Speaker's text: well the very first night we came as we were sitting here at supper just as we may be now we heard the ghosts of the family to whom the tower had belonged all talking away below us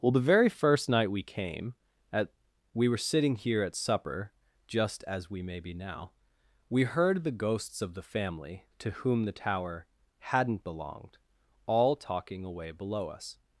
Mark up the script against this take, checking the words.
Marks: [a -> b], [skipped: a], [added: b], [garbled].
well the very first night we came [as -> at] we were sitting here at supper just as we may be now we heard the ghosts of the family to whom the tower [had -> hadn't] belonged all talking away below us